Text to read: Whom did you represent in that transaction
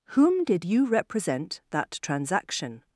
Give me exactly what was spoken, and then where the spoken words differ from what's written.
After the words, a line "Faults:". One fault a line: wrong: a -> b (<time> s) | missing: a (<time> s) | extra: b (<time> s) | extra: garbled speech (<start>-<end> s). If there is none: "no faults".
Whom did you represent that transaction
Faults:
missing: in (1.6 s)